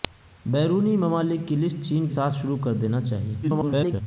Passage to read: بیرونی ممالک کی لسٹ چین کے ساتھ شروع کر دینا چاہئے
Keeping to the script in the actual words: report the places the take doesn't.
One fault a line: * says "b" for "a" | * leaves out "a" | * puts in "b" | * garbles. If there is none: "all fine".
* leaves out "کے"
* garbles